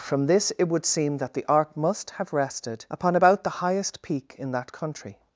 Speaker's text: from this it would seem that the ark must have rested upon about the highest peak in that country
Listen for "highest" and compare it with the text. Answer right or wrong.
right